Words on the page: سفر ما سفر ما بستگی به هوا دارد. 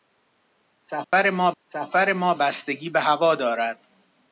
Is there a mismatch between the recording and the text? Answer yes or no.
no